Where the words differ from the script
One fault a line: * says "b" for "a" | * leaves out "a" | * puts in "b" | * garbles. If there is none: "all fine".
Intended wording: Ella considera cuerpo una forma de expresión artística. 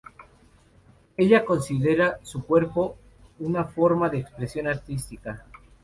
* puts in "su"